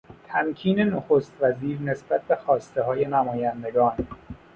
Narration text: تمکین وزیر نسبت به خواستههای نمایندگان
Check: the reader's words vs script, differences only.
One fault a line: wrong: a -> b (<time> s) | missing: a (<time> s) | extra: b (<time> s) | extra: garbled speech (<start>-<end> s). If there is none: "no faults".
extra: نخست (0.8 s)